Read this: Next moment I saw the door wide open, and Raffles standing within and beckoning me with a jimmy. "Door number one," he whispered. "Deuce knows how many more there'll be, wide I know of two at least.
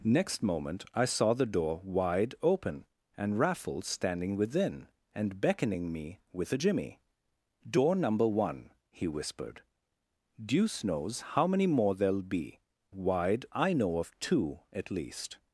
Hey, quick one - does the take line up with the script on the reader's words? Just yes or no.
yes